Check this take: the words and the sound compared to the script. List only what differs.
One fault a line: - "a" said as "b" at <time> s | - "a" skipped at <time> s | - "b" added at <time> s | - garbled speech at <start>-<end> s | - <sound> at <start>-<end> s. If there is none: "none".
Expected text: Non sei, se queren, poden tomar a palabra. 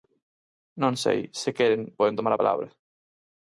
none